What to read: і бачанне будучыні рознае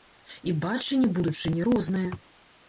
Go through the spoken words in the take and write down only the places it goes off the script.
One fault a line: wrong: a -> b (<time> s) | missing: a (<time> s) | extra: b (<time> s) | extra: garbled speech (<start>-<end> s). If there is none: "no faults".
no faults